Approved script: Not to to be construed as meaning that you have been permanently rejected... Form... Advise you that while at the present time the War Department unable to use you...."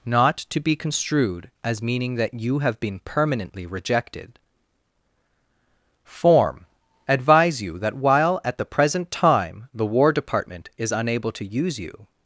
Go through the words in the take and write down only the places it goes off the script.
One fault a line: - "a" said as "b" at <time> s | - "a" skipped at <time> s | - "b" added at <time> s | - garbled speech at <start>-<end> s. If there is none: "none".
- "to" skipped at 0.6 s
- "is" added at 10.8 s